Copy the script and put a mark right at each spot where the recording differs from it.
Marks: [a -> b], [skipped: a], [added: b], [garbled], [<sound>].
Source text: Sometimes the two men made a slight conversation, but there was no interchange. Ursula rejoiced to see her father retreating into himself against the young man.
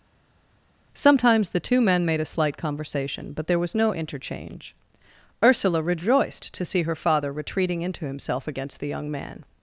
Sometimes the two men made a slight conversation, but there was no interchange. Ursula rejoiced to see her father retreating into himself against the young man.